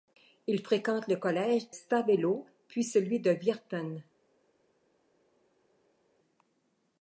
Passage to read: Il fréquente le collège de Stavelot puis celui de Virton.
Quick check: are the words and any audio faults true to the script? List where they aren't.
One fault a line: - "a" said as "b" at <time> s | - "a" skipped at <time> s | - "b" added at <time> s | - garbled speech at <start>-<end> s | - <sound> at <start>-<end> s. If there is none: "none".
- "de" skipped at 1.7 s